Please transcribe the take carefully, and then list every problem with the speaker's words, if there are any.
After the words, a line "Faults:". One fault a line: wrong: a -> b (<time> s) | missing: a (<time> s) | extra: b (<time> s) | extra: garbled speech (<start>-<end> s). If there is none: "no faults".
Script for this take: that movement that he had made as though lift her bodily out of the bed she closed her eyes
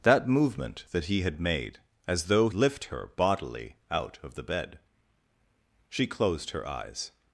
that movement that he had made as though lift her bodily out of the bed she closed her eyes
Faults:
no faults